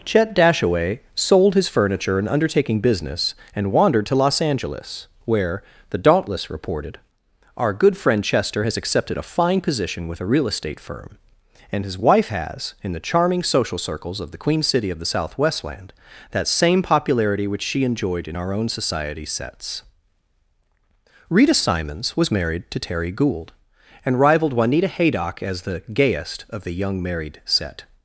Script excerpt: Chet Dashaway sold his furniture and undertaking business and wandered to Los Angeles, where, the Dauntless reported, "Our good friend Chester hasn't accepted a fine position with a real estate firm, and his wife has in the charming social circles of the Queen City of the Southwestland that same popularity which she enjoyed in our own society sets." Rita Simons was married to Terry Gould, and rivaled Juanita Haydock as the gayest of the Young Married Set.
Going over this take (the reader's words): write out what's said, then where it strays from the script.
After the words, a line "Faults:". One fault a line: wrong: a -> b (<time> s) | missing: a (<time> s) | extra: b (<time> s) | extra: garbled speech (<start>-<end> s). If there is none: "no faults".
Chet Dashaway sold his furniture and undertaking business and wandered to Los Angeles, where, the Dauntless reported, "Our good friend Chester has accepted a fine position with a real estate firm, and his wife has in the charming social circles of the Queen City of the Southwestland that same popularity which she enjoyed in our own society sets." Rita Simons was married to Terry Gould, and rivaled Juanita Haydock as the gayest of the Young Married Set.
Faults:
wrong: hasn't -> has (8.6 s)